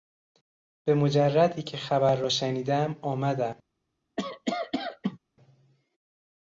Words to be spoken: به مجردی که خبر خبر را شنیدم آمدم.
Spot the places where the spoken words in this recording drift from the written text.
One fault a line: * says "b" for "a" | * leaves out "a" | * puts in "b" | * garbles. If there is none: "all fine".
* leaves out "خبر"